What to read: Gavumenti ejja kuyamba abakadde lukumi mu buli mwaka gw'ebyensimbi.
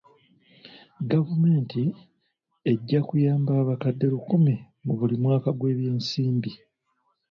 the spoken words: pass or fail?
pass